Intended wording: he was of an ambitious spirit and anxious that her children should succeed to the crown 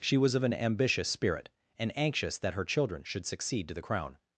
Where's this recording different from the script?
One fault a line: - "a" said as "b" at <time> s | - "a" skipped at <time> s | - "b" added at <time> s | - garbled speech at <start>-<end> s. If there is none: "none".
- "he" said as "she" at 0.0 s